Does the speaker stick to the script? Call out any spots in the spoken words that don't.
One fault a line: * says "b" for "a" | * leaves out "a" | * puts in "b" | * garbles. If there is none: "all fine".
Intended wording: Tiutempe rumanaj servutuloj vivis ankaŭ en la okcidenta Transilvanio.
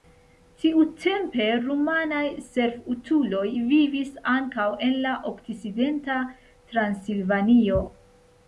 all fine